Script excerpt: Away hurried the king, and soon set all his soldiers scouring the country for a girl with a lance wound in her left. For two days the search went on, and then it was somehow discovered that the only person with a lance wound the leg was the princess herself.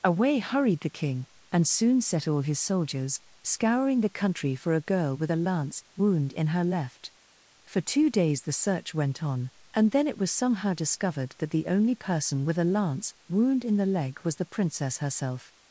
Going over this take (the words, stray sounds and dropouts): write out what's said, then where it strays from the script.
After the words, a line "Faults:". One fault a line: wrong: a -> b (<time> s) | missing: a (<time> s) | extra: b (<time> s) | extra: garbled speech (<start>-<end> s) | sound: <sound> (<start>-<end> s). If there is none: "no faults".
Away hurried the king, and soon set all his soldiers scouring the country for a girl with a lance wound in her left. For two days the search went on, and then it was somehow discovered that the only person with a lance wound in the leg was the princess herself.
Faults:
extra: in (13.6 s)